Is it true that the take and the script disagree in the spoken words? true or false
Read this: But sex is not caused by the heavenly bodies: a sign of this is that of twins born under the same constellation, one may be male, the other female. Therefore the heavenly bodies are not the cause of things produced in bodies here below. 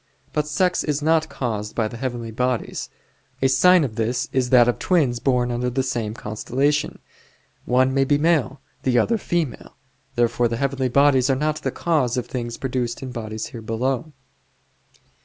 false